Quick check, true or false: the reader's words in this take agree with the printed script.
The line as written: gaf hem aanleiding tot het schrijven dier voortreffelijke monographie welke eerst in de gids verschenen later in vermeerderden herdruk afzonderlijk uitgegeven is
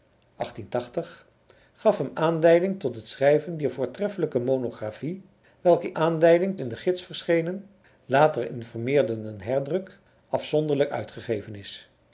false